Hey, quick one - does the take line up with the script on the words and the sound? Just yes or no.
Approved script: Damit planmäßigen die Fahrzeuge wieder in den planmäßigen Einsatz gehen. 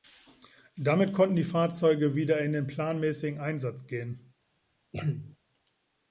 no